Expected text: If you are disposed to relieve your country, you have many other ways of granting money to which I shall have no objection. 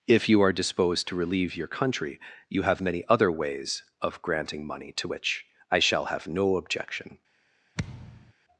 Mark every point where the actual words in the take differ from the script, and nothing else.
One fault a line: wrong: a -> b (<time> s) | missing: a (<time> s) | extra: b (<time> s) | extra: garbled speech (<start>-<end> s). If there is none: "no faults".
no faults